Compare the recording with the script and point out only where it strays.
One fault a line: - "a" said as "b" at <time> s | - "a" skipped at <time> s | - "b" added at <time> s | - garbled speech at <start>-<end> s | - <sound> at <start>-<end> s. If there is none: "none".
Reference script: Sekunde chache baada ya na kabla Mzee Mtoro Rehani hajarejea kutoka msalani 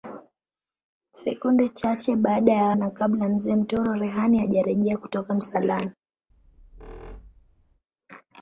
- squeak at 6.3-7.8 s